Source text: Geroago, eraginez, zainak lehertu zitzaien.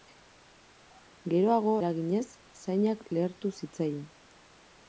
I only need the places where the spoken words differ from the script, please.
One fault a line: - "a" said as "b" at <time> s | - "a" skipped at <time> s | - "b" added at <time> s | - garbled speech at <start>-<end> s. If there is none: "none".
none